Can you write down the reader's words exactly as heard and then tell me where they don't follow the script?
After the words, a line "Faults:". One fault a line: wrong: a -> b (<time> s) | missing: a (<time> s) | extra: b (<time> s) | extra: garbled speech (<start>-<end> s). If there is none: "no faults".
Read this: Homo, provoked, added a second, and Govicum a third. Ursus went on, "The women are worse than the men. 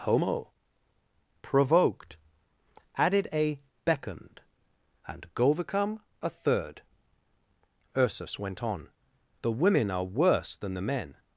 Homo, provoked, added a beckoned, and Govicum a third. Ursus went on, "The women are worse than the men.
Faults:
wrong: second -> beckoned (3.9 s)